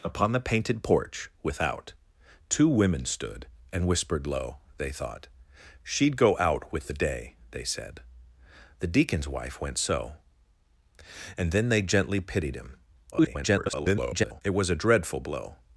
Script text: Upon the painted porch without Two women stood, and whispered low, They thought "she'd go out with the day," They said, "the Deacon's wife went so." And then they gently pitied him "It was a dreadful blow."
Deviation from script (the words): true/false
true